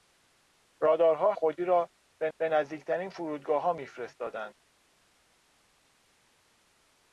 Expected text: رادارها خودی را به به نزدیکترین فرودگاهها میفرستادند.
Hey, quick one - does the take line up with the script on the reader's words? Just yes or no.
yes